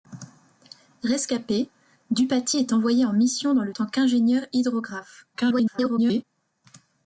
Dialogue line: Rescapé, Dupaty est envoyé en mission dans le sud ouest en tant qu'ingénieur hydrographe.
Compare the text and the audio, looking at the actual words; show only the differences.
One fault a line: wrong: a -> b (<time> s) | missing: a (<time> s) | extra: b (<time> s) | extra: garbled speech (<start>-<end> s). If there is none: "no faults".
missing: sud ouest en (3.7 s)
extra: garbled speech (5.3-6.2 s)